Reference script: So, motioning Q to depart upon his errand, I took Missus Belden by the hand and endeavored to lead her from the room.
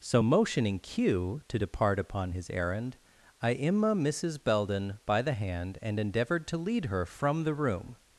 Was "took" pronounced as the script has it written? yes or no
no